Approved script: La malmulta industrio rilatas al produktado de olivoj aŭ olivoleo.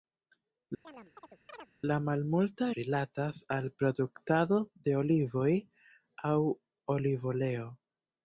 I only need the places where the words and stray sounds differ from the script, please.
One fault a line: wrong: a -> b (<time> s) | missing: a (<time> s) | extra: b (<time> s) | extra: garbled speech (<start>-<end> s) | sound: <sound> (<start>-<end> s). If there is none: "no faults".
sound: chirp (0.8-1.7 s)
missing: industrio (2.7 s)